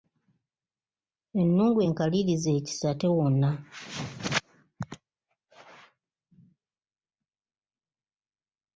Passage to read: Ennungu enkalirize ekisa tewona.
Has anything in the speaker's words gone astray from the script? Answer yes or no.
no